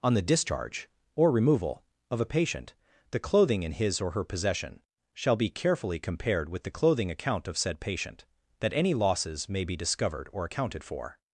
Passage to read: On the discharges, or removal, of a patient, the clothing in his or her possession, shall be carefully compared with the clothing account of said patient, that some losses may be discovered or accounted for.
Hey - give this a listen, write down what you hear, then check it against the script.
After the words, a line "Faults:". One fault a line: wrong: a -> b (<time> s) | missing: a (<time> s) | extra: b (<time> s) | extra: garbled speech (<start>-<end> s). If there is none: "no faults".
On the discharge, or removal, of a patient, the clothing in his or her possession, shall be carefully compared with the clothing account of said patient, that any losses may be discovered or accounted for.
Faults:
wrong: discharges -> discharge (0.2 s)
wrong: some -> any (8.7 s)